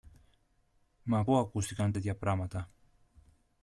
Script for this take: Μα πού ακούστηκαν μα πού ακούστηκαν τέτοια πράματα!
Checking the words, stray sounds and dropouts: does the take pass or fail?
fail